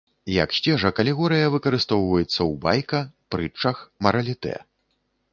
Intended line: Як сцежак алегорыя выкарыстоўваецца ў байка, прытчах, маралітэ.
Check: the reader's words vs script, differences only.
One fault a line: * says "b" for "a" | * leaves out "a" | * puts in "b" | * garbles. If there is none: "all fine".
all fine